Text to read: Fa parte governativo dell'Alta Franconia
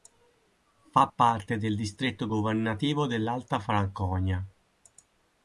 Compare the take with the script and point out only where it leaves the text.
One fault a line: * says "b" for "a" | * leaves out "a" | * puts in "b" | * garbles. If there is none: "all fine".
* puts in "del distretto"